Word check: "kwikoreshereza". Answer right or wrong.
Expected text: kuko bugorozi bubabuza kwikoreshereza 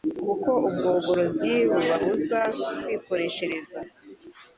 right